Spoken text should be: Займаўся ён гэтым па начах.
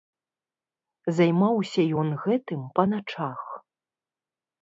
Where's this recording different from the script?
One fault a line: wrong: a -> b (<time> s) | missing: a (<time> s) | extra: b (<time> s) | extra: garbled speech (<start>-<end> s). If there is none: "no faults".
no faults